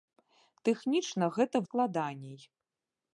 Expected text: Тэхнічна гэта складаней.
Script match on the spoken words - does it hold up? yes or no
yes